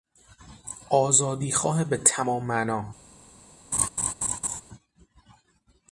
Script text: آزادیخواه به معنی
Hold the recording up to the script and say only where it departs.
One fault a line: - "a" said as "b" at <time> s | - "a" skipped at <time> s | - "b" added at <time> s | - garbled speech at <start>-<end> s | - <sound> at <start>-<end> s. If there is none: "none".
- "تمام" added at 2.0 s
- laugh at 3.7-4.6 s